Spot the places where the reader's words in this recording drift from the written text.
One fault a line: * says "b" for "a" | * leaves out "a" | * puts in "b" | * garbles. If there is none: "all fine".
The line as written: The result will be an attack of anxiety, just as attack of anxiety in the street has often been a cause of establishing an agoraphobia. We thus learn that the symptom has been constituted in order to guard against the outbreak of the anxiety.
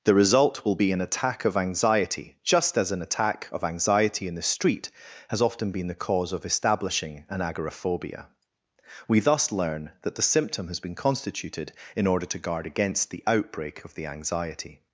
* puts in "an"
* says "the" for "a"